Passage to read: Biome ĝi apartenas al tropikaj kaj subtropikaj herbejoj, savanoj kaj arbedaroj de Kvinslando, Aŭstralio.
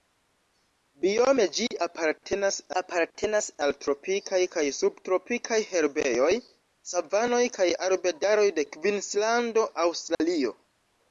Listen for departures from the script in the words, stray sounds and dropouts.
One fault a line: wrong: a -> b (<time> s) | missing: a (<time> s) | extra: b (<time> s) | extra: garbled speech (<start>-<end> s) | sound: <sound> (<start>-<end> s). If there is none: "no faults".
extra: apartenas (2.8 s)
sound: dropout (10.1-10.2 s)